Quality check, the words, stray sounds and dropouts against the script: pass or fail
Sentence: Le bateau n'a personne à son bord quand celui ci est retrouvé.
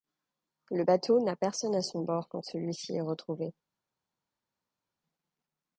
pass